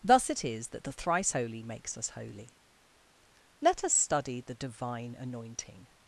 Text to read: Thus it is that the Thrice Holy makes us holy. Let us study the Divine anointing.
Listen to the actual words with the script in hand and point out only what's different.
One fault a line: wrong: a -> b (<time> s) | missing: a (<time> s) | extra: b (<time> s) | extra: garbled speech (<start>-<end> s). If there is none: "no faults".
no faults